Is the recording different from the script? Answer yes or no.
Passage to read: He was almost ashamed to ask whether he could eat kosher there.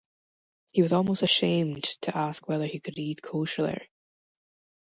no